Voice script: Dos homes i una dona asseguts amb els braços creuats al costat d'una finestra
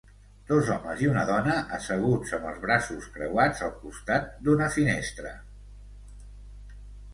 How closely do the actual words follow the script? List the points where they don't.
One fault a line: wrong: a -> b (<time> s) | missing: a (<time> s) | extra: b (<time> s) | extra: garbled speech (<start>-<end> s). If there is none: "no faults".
no faults